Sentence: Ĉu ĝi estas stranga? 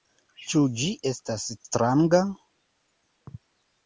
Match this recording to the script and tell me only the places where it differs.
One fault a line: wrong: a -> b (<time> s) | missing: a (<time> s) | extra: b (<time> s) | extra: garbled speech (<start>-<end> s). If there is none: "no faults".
no faults